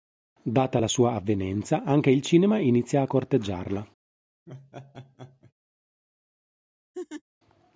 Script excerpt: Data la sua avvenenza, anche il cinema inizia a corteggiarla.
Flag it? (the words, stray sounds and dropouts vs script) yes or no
yes